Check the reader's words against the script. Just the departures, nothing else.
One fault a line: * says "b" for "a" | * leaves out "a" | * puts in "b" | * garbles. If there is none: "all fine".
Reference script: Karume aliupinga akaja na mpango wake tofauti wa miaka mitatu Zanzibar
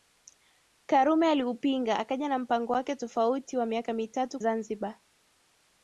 all fine